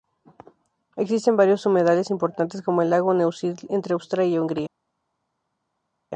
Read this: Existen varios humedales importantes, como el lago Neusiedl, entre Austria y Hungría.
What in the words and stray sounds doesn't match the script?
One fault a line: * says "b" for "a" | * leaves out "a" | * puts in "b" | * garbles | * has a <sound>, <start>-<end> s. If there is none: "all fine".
all fine